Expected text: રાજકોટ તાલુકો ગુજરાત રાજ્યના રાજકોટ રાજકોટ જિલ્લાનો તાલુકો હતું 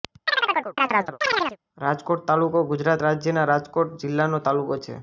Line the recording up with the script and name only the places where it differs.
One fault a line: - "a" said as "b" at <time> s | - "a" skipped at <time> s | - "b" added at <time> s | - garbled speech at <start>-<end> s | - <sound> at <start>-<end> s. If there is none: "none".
- chirp at 0.3-1.6 s
- "રાજકોટ" skipped at 4.0 s
- "હતું" said as "છે" at 4.8 s